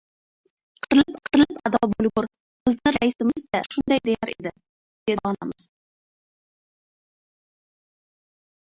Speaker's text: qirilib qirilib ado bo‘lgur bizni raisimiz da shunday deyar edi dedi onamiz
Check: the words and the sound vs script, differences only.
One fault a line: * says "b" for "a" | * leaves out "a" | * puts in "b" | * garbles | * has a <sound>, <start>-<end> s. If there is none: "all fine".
all fine